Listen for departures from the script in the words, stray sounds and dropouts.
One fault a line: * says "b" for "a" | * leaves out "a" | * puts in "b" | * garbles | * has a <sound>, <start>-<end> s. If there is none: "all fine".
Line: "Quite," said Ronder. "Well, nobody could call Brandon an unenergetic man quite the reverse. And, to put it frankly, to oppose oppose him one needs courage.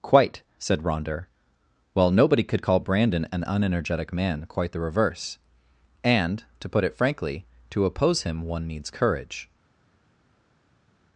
* leaves out "oppose"